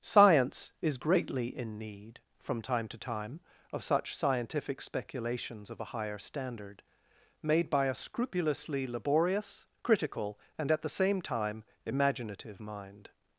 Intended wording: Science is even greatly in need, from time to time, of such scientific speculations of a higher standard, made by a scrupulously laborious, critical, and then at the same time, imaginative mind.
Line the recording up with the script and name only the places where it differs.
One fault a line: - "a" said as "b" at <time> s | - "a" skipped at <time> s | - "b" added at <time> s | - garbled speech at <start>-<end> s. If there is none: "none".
- "even" skipped at 1.0 s
- "then" skipped at 10.7 s